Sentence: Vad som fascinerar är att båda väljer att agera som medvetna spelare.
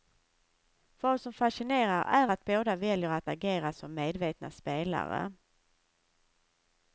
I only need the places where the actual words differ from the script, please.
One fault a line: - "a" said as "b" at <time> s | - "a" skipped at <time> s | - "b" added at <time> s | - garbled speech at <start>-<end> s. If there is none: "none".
none